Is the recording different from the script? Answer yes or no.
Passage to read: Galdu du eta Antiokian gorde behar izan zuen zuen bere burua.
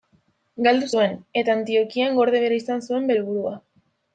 yes